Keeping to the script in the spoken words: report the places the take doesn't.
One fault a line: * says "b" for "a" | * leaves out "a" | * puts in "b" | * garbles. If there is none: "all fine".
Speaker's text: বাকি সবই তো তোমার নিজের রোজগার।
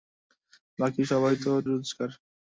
* leaves out "তোমার নিজের"